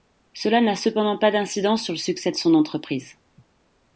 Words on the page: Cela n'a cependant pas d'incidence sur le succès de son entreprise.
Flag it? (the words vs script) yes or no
no